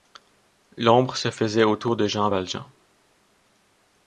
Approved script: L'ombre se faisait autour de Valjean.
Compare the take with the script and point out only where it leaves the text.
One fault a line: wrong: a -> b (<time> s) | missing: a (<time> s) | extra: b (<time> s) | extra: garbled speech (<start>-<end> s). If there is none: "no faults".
extra: Jean (2.1 s)